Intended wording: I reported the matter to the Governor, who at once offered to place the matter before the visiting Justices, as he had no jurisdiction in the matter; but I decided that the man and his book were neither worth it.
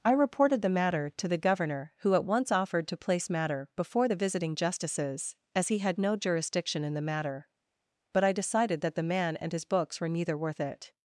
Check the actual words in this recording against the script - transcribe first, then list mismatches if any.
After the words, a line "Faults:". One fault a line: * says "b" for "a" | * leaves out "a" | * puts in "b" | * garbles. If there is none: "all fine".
I reported the matter to the Governor, who at once offered to place matter before the visiting Justices, as he had no jurisdiction in the matter; but I decided that the man and his books were neither worth it.
Faults:
* leaves out "the"
* says "books" for "book"